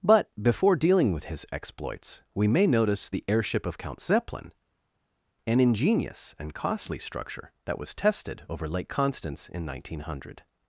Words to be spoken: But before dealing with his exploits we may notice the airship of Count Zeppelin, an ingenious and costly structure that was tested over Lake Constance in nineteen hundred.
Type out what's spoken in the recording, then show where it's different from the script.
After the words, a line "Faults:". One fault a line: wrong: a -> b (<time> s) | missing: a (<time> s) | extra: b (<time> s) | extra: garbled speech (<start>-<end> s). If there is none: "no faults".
But before dealing with his exploits we may notice the airship of Count Zeppelin, an ingenious and costly structure that was tested over Lake Constance in nineteen hundred.
Faults:
no faults